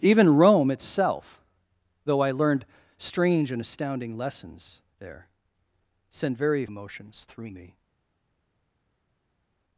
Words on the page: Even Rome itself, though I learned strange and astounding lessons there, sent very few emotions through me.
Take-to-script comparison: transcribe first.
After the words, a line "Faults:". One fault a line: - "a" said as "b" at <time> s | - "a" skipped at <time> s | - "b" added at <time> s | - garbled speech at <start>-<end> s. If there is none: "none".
Even Rome itself, though I learned strange and astounding lessons there, sent very emotions through me.
Faults:
- "few" skipped at 6.7 s